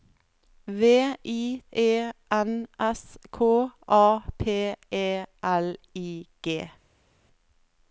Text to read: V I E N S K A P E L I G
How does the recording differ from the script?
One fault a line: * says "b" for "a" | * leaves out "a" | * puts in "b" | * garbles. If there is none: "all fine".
all fine